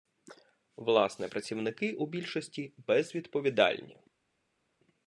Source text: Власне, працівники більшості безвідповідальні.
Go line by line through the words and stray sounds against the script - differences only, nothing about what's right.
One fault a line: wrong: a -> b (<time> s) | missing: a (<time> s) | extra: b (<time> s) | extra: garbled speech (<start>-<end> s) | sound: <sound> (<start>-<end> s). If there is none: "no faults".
extra: у (1.9 s)